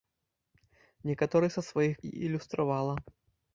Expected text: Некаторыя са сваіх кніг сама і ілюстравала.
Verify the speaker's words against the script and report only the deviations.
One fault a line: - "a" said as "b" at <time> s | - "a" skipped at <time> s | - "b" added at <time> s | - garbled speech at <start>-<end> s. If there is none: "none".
- "кніг сама" skipped at 1.9 s